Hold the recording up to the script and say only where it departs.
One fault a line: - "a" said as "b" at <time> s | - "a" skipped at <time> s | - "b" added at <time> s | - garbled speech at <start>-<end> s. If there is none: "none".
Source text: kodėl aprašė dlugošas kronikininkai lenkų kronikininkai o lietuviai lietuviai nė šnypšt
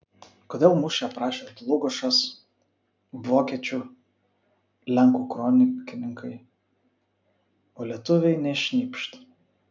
- "mūšį" added at 0.8 s
- "kronikininkai" said as "vokiečių" at 3.3 s
- "lietuviai" skipped at 8.4 s